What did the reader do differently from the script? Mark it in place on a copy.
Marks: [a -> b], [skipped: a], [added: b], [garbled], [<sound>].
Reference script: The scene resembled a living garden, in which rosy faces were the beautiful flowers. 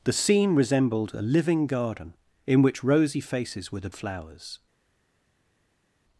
The scene resembled a living garden, in which rosy faces were the [skipped: beautiful] flowers.